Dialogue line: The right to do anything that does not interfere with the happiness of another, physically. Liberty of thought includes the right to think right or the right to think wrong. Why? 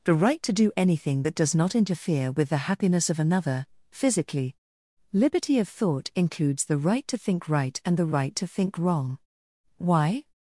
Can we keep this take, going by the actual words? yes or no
no